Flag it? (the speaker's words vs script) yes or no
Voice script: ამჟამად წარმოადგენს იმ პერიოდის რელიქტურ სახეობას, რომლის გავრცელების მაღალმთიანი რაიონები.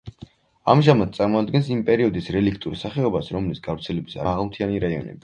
no